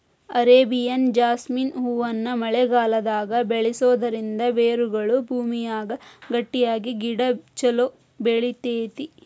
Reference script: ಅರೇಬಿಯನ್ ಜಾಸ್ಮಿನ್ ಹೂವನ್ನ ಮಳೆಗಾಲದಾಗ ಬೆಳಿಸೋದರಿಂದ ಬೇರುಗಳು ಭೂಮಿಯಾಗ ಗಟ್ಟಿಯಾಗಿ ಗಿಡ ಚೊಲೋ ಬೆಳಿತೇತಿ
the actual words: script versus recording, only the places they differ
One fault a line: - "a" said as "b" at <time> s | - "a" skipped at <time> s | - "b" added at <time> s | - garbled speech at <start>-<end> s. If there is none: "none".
none